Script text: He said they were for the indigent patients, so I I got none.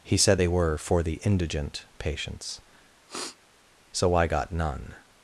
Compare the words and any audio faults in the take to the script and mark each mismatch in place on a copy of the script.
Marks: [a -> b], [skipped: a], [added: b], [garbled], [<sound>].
He said they were for the indigent patients, [sniff] so I [skipped: I] got none.